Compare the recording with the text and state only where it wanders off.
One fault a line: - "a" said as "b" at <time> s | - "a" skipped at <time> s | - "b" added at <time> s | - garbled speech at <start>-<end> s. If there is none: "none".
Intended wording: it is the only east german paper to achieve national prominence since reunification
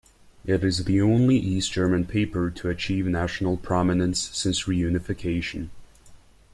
none